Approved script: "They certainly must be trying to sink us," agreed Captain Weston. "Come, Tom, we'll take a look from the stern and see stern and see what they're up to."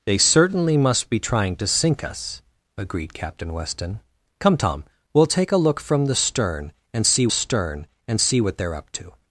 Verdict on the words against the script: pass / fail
pass